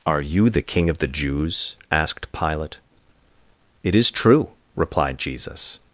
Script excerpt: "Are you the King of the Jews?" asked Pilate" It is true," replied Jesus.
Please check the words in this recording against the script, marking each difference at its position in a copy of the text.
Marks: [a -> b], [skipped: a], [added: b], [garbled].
"Are you the King of the Jews?" asked Pilate" It is true," replied Jesus.